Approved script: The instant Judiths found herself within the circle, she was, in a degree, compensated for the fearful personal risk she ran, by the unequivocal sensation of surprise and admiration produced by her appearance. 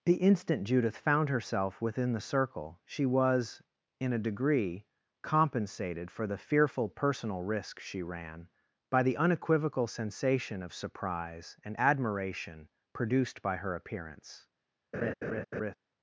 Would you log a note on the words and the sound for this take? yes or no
yes